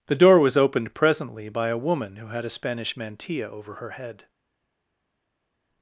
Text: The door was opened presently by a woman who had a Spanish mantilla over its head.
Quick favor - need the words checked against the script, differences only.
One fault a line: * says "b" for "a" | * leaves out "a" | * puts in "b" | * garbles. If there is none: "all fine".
* says "her" for "its"